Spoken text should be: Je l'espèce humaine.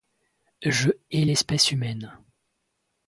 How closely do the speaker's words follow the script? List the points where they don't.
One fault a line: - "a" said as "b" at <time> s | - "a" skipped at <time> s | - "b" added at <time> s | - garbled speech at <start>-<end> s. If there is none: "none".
- "hais" added at 1.1 s